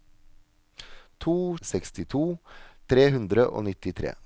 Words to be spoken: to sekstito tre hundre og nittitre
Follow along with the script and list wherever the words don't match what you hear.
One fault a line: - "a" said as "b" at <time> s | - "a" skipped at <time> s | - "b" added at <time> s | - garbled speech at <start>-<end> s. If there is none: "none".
none